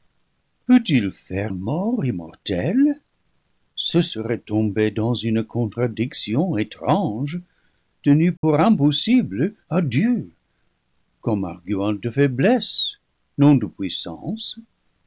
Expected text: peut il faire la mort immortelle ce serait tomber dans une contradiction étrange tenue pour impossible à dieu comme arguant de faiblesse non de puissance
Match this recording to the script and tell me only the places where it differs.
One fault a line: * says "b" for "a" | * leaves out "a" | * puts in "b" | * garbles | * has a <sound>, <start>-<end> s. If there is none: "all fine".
* leaves out "la"
* has a dropout, 8.4-8.4 s